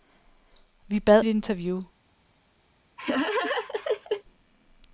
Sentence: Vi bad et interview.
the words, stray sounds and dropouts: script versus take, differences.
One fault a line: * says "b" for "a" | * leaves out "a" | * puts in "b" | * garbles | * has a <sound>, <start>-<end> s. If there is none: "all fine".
* has a laugh, 3.0-4.2 s